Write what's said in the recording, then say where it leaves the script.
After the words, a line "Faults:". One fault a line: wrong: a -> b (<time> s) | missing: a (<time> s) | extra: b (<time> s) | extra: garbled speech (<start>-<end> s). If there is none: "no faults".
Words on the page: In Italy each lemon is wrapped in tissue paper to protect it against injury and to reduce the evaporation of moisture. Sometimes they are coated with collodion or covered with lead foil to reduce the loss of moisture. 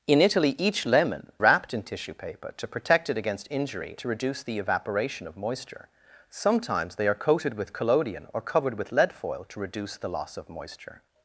In Italy each lemon wrapped in tissue paper to protect it against injury to reduce the evaporation of moisture. Sometimes they are coated with collodion or covered with lead foil to reduce the loss of moisture.
Faults:
missing: is (1.3 s)
missing: and (4.0 s)